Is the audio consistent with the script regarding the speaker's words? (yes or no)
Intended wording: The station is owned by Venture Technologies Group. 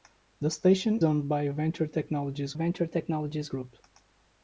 no